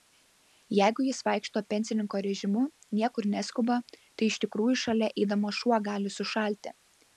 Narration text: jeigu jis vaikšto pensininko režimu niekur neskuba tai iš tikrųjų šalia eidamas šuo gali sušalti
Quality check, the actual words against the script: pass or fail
pass